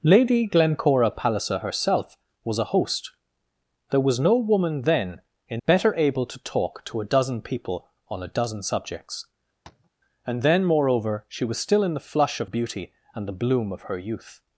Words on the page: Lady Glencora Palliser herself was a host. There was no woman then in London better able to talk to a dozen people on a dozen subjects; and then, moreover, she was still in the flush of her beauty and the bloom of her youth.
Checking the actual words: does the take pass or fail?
fail